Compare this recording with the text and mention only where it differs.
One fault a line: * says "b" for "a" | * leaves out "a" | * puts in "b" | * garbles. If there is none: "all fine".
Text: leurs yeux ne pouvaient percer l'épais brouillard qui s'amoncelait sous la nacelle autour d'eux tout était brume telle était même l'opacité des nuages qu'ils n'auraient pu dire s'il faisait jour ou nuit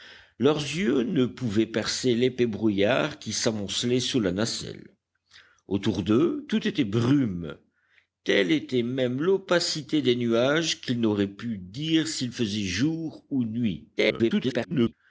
* garbles